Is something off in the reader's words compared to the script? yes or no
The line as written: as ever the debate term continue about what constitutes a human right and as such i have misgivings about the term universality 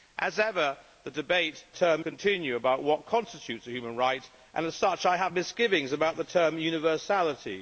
no